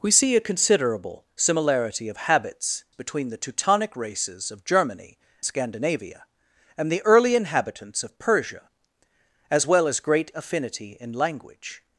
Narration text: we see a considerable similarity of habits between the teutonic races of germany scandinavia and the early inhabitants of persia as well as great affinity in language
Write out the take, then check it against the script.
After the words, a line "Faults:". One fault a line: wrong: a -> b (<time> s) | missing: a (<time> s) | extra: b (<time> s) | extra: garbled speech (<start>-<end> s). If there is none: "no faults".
we see a considerable similarity of habits between the teutonic races of germany scandinavia and the early inhabitants of persia as well as great affinity in language
Faults:
no faults